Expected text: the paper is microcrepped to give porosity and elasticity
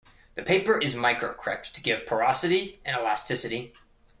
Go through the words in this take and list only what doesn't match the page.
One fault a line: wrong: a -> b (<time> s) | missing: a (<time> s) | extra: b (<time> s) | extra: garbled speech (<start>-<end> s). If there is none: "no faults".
no faults